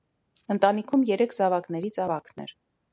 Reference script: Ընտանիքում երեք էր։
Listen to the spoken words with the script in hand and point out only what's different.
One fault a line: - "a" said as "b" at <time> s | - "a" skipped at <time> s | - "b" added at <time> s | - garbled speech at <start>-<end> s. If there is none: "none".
- "զավակներից ավագն" added at 1.4 s